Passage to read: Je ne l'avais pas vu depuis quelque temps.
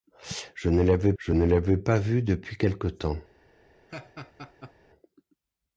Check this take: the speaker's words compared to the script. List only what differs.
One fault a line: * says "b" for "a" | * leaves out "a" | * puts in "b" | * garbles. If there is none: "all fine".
* puts in "je ne l'avais"